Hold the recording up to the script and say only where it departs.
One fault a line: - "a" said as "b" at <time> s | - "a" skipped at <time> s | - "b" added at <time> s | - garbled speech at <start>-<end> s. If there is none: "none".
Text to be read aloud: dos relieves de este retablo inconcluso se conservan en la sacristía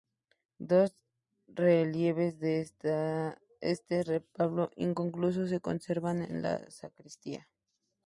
none